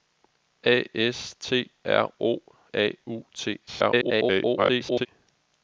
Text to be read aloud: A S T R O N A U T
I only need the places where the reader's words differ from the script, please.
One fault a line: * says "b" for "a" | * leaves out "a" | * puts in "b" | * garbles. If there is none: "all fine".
* leaves out "N"
* garbles